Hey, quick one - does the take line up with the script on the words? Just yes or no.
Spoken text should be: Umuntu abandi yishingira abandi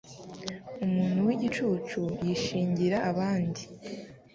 no